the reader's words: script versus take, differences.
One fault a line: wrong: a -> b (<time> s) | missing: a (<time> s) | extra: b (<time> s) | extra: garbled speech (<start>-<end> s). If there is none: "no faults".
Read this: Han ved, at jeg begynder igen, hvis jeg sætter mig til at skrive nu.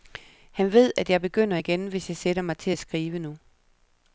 no faults